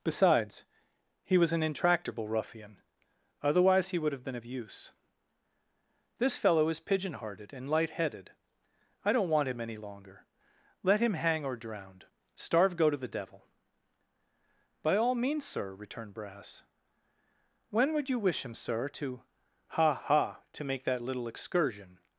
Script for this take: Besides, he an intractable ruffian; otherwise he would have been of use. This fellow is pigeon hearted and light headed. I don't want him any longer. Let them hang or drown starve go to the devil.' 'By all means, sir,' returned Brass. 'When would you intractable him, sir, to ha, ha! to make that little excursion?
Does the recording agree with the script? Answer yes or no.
no